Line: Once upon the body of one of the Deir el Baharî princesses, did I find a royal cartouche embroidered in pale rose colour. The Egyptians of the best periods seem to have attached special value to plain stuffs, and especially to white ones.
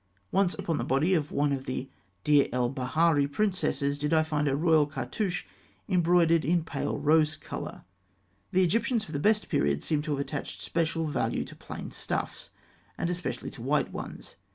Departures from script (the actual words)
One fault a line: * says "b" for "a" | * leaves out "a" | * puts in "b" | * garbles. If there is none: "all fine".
all fine